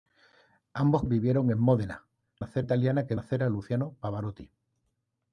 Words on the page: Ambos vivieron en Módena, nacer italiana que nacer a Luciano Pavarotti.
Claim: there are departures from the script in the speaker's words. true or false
false